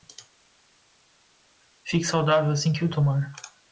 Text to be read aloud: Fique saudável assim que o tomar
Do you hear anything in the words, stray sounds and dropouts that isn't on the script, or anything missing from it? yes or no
no